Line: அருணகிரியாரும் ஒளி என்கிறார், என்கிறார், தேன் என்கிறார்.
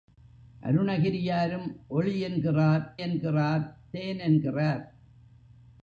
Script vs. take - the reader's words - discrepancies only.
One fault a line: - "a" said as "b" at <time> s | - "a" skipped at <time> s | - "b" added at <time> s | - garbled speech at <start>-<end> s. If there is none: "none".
none